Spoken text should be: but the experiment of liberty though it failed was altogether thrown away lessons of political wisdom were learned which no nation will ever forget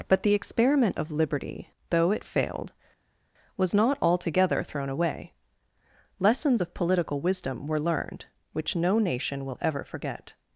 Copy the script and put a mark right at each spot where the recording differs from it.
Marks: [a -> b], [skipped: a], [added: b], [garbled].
but the experiment of liberty though it failed was [added: not] altogether thrown away lessons of political wisdom were learned which no nation will ever forget